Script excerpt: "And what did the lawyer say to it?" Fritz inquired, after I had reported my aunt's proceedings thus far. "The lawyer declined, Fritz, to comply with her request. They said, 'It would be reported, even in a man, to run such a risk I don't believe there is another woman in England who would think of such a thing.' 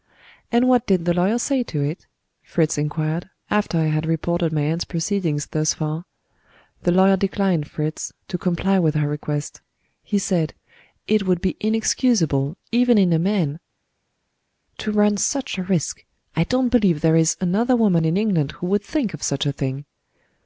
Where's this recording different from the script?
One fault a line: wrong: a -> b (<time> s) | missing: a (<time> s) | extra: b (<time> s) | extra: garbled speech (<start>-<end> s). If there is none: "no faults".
wrong: They -> He (10.0 s)
wrong: reported -> inexcusable (11.6 s)